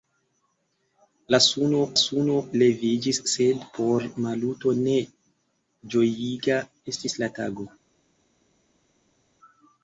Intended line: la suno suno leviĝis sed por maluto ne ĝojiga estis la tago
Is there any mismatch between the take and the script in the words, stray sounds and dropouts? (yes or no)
no